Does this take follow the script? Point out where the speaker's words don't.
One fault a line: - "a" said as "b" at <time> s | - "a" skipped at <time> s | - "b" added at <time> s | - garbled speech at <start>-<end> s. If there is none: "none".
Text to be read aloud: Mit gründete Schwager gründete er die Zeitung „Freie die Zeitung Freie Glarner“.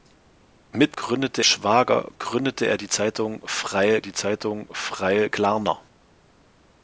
none